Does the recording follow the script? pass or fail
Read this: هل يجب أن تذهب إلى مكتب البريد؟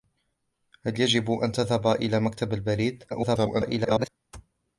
fail